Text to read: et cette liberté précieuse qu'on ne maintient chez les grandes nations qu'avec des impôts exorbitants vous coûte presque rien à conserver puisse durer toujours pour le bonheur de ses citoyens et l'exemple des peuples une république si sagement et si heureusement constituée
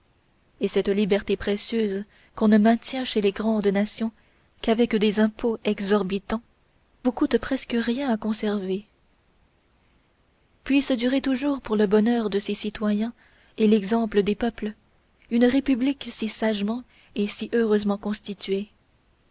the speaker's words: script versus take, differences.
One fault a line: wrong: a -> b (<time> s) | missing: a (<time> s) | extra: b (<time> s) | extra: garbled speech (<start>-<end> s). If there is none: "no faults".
no faults